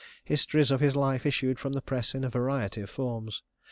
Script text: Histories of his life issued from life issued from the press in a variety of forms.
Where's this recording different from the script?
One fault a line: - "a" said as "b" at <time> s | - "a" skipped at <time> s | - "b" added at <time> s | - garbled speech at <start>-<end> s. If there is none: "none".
- "life issued from" skipped at 1.7 s